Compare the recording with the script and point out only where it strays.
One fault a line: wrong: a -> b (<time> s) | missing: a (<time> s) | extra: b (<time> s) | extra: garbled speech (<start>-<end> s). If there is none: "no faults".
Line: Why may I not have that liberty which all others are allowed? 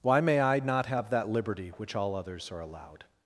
no faults